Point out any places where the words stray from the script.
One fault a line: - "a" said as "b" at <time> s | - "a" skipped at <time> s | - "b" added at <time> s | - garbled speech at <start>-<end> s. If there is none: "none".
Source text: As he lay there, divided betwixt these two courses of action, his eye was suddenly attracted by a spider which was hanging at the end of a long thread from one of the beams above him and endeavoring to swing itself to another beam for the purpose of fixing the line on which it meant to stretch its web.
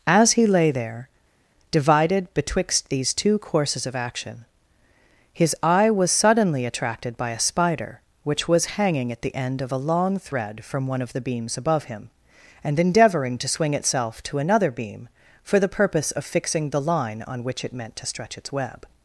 none